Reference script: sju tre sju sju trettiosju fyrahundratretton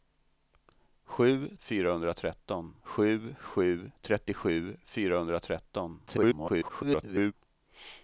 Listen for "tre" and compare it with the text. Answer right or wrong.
wrong